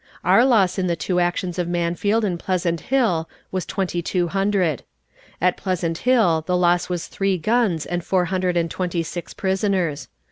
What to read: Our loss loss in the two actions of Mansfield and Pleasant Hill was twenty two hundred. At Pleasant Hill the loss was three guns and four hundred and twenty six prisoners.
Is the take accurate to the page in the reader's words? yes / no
no